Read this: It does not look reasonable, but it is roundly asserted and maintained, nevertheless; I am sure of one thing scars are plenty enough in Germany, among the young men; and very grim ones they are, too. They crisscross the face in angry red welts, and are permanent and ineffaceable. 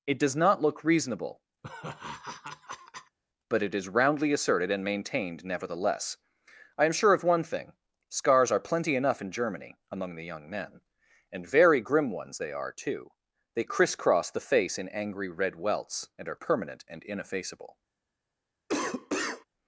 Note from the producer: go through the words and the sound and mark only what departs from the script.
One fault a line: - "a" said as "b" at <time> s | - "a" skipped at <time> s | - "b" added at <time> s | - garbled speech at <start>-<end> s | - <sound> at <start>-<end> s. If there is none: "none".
- laugh at 1.6-3.2 s
- cough at 18.7-19.5 s